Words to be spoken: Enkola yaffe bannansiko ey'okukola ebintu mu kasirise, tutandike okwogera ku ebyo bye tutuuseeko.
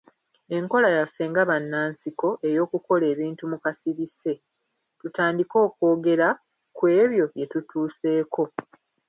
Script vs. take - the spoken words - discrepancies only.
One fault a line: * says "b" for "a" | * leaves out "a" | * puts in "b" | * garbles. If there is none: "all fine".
* puts in "nga"